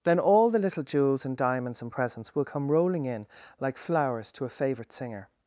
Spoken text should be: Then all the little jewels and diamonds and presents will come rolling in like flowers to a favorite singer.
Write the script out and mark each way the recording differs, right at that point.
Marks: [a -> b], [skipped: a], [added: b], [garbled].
Then all the little jewels and diamonds and presents will come rolling in like flowers to a favorite singer.